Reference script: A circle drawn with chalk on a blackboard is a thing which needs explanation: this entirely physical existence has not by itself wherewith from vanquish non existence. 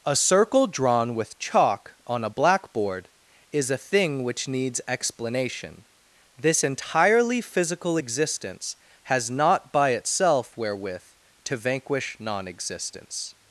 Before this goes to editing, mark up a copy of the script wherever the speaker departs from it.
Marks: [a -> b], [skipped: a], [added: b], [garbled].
A circle drawn with chalk on a blackboard is a thing which needs explanation: this entirely physical existence has not by itself wherewith [from -> to] vanquish non existence.